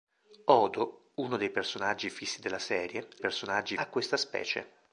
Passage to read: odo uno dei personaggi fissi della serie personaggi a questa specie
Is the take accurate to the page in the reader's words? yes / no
yes